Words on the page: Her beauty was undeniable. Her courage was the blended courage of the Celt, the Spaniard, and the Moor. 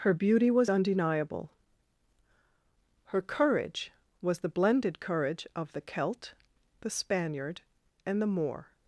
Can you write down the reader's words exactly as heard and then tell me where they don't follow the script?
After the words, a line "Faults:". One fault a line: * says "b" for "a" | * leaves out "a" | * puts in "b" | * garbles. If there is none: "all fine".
Her beauty was undeniable. Her courage was the blended courage of the Celt, the Spaniard, and the Moor.
Faults:
all fine